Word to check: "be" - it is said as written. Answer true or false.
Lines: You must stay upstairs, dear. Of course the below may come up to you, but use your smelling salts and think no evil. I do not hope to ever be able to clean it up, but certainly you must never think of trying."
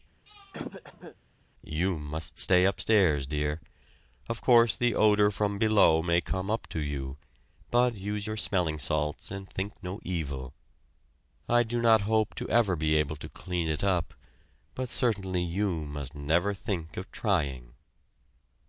true